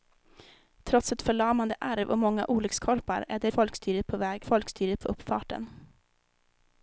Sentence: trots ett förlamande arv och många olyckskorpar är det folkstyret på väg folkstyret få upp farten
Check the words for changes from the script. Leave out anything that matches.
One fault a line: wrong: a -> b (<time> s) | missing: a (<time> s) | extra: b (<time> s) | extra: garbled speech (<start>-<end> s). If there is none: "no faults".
no faults